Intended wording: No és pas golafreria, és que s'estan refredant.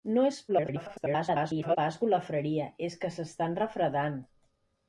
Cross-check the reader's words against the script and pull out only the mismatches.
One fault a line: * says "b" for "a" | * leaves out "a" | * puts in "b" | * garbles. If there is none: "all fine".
* garbles